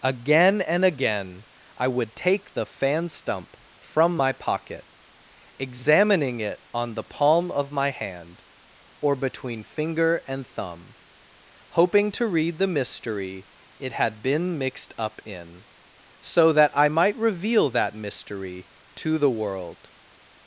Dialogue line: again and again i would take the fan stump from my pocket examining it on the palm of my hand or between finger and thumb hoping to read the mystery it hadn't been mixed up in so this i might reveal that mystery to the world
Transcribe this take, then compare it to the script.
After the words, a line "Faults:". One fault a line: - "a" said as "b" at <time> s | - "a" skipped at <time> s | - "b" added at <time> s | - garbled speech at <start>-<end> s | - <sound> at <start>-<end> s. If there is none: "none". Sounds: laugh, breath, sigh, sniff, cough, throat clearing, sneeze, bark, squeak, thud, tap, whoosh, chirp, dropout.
again and again i would take the fan stump from my pocket examining it on the palm of my hand or between finger and thumb hoping to read the mystery it had been mixed up in so that i might reveal that mystery to the world
Faults:
- "hadn't" said as "had" at 13.9 s
- "this" said as "that" at 16.5 s